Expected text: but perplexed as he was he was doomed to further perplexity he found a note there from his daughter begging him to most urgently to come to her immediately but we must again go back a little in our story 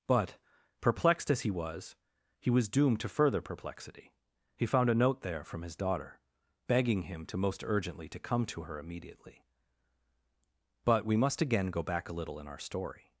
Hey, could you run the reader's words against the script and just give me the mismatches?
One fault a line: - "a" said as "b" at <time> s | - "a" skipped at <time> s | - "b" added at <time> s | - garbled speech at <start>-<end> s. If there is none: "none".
none